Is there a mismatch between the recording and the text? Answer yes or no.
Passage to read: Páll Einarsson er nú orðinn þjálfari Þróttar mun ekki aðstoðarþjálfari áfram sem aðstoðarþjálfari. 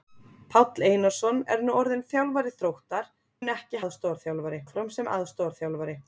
no